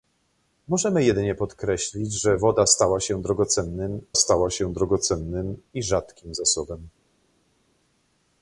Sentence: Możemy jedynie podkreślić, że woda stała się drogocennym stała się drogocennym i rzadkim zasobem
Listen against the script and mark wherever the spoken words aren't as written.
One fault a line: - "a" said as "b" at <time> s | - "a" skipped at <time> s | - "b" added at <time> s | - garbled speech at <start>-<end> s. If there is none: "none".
none